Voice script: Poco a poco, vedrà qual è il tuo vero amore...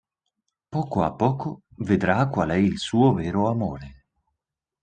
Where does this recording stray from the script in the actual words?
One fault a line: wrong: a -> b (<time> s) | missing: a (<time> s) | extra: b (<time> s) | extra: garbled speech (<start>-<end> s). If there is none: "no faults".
wrong: tuo -> suo (2.8 s)